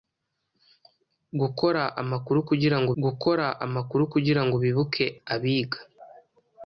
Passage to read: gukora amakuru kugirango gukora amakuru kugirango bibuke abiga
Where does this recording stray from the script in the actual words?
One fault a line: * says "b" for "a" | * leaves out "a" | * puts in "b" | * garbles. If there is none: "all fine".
all fine